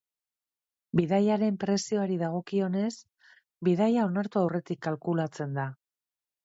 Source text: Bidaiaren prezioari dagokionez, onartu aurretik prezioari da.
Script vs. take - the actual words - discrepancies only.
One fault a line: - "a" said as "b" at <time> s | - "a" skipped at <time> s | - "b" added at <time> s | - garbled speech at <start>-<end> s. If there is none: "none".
- "bidaia" added at 3.7 s
- "prezioari" said as "kalkulatzen" at 4.9 s